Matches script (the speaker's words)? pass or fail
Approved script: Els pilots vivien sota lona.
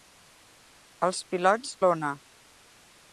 fail